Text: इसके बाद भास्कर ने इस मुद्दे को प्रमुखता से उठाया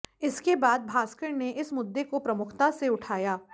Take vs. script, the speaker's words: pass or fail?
pass